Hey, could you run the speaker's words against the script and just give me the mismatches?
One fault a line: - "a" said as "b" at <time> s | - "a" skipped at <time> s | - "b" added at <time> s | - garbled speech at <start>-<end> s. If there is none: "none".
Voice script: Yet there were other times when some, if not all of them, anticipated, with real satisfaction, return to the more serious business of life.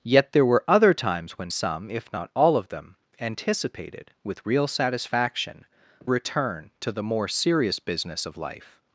none